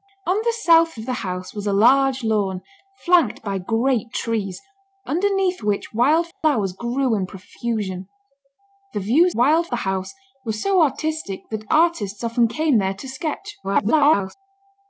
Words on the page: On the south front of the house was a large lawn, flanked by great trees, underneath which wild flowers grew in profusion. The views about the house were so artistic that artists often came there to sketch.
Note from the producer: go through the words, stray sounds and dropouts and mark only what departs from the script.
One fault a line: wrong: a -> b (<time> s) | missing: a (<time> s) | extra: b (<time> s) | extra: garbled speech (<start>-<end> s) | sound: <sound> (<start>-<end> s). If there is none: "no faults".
missing: front (0.9 s)
sound: dropout (6.3-6.4 s)
wrong: about -> wild (9.3 s)
extra: garbled speech (13.6-14.3 s)